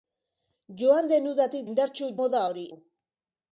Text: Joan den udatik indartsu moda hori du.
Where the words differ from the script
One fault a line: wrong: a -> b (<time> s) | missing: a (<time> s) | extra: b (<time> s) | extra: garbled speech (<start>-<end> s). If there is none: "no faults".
no faults